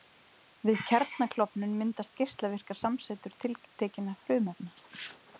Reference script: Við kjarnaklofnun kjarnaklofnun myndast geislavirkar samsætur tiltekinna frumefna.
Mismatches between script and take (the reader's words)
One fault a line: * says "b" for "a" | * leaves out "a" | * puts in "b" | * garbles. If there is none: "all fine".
* leaves out "kjarnaklofnun"